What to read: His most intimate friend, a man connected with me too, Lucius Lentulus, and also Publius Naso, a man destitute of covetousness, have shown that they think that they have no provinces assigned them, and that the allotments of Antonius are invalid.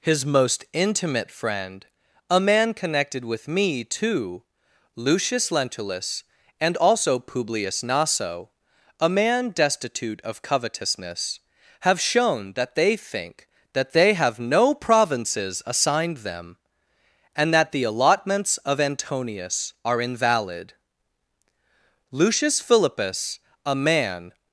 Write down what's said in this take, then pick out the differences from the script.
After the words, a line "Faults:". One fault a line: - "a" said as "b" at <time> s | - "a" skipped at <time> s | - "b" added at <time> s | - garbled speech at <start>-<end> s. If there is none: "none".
His most intimate friend, a man connected with me too, Lucius Lentulus, and also Publius Naso, a man destitute of covetousness, have shown that they think that they have no provinces assigned them, and that the allotments of Antonius are invalid. Lucius Philippus, a man
Faults:
- "Lucius Philippus a man" added at 22.1 s